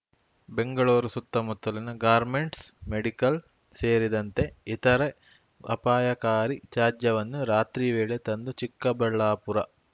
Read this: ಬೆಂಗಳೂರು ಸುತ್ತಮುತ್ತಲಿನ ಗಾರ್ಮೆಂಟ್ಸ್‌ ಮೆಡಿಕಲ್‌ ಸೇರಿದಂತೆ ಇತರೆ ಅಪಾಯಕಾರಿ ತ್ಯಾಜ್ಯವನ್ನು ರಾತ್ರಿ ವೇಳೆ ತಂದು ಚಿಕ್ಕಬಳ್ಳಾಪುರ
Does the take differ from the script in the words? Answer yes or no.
no